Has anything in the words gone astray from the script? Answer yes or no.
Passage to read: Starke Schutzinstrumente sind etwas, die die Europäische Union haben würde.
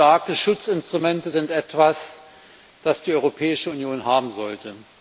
yes